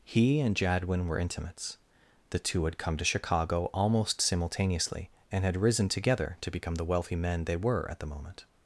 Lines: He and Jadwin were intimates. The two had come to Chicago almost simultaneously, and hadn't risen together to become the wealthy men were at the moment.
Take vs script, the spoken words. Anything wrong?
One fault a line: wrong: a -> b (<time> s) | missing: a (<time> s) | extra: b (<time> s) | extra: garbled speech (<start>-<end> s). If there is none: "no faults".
wrong: hadn't -> had (5.5 s)
extra: they (7.5 s)